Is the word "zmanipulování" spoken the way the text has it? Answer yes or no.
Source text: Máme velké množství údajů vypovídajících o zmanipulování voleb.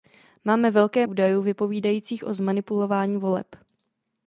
yes